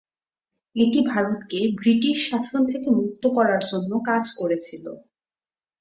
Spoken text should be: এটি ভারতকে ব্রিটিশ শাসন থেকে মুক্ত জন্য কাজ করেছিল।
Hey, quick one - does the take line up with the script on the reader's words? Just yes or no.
no